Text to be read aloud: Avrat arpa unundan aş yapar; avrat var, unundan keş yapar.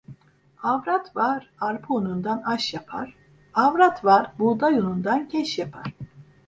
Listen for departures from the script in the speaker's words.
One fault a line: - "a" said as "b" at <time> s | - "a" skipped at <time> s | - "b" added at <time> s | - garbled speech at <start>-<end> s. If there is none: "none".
- "var" added at 1.1 s
- "buğday" added at 4.4 s